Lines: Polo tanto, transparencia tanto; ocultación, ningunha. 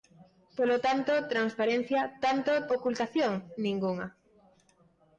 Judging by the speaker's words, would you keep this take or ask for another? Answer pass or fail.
pass